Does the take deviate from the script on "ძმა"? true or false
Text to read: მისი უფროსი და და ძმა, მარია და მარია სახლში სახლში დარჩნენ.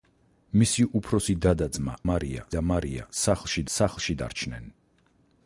false